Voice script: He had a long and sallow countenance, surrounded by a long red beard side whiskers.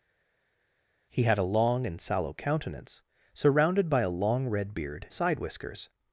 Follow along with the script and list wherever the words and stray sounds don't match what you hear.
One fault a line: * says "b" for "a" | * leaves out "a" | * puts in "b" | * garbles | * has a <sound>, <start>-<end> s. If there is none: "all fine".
all fine